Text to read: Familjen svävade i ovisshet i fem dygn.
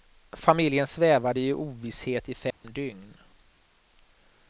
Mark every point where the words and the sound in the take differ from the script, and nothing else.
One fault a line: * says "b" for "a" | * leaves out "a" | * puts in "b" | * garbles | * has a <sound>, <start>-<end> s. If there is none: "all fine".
* has a dropout, 2.5-2.6 s